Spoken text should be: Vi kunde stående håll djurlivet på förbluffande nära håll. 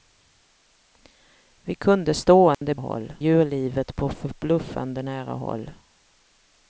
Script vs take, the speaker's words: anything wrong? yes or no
no